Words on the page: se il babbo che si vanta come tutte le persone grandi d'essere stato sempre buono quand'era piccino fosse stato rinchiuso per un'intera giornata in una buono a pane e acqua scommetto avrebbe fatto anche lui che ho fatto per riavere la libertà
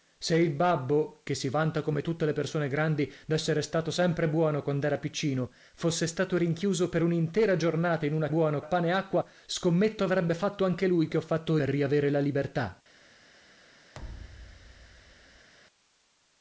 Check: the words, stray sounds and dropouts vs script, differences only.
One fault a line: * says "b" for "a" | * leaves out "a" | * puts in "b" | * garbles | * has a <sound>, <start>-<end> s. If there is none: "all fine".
* has a thud, 13.9-15.5 s